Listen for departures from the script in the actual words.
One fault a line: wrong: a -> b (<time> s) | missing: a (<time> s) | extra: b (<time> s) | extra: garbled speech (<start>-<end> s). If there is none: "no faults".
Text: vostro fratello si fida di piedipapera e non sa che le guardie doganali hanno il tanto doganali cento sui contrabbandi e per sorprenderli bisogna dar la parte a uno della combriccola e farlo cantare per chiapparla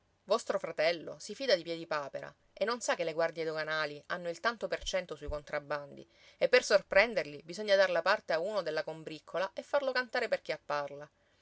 wrong: doganali -> per (4.7 s)